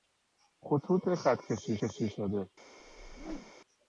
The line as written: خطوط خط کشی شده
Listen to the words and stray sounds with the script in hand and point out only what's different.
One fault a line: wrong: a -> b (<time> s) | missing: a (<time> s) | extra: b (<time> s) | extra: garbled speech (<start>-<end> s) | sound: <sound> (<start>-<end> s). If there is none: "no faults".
extra: کشی (1.9 s)
sound: whoosh (2.8-3.5 s)